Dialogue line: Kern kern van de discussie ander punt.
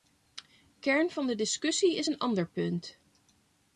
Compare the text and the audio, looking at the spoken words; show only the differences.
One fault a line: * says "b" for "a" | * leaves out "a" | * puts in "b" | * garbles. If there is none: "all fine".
* leaves out "kern"
* puts in "is een"